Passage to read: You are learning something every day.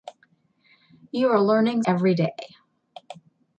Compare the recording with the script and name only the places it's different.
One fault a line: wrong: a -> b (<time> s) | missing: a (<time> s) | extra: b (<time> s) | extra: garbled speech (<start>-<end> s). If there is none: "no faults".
missing: something (1.8 s)